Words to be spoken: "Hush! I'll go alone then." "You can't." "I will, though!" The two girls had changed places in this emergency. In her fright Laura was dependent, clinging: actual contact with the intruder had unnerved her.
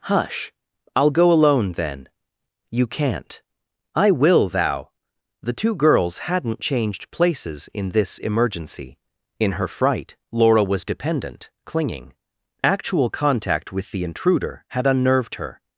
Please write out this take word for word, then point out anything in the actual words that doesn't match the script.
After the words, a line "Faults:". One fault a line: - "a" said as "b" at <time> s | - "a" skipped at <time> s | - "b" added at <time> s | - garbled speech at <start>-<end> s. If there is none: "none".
"Hush! I'll go alone then." "You can't." "I will, thou!" The two girls hadn't changed places in this emergency. In her fright Laura was dependent, clinging: actual contact with the intruder had unnerved her.
Faults:
- "though" said as "thou" at 4.5 s
- "had" said as "hadn't" at 6.2 s